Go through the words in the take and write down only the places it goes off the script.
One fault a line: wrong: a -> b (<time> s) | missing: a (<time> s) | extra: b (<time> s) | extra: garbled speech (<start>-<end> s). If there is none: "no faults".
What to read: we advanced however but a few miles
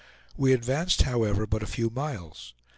no faults